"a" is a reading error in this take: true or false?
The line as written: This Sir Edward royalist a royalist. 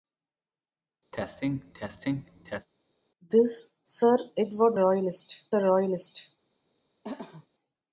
false